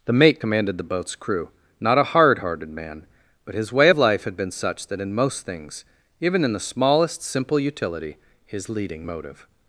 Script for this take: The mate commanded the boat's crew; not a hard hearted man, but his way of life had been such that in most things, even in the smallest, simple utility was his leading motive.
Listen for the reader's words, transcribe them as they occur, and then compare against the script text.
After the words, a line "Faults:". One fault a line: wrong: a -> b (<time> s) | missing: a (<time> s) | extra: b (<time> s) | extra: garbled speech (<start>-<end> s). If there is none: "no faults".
The mate commanded the boat's crew; not a hard hearted man, but his way of life had been such that in most things, even in the smallest, simple utility his leading motive.
Faults:
missing: was (8.2 s)